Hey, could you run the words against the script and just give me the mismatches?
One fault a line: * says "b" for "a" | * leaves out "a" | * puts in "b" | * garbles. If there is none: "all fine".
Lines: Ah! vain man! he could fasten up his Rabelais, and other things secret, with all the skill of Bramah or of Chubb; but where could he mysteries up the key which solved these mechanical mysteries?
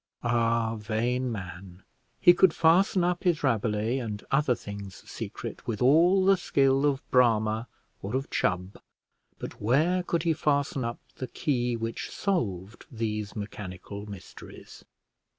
* says "fasten" for "mysteries"